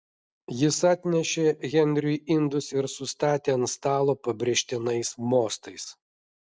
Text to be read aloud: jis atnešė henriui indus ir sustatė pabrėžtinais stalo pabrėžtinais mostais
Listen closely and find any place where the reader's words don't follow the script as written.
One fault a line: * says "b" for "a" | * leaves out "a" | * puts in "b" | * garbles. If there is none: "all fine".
* says "ant" for "pabrėžtinais"